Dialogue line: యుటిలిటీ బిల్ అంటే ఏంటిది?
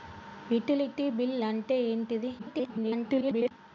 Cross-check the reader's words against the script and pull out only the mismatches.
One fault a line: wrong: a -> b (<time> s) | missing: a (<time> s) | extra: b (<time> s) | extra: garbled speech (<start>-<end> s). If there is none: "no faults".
extra: garbled speech (2.4-3.5 s)